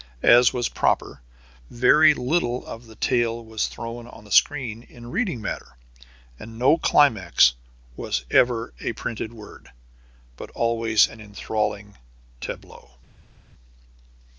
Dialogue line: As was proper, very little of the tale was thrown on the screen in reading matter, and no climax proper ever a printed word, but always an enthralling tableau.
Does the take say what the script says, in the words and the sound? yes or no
no